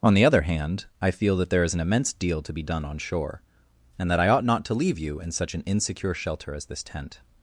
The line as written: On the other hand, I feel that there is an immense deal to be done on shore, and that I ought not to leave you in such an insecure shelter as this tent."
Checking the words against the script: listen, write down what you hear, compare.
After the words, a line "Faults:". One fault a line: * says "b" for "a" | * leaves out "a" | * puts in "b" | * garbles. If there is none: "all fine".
On the other hand, I feel that there is an immense deal to be done on shore, and that I ought not to leave you in such an insecure shelter as this tent."
Faults:
all fine